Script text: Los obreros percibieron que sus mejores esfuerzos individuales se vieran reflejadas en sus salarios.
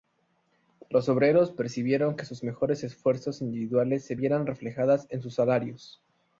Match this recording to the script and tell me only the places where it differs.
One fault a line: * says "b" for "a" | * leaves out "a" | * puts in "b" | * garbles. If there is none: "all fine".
all fine